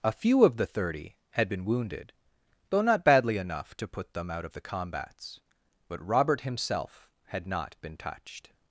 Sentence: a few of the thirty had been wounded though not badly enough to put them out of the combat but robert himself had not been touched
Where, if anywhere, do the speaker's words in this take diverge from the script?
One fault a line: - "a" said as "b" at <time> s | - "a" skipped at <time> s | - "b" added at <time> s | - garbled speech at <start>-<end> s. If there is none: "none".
- "combat" said as "combats" at 4.6 s